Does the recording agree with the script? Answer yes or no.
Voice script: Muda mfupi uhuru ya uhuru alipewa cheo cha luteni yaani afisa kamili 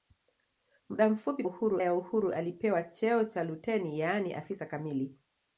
yes